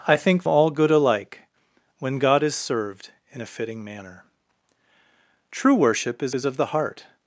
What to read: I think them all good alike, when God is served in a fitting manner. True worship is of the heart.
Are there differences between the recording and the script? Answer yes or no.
yes